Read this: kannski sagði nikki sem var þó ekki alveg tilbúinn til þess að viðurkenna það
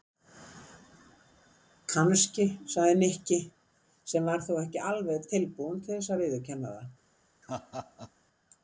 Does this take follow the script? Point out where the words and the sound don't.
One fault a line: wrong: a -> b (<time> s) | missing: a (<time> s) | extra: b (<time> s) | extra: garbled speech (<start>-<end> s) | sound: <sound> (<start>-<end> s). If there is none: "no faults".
sound: laugh (7.4-8.1 s)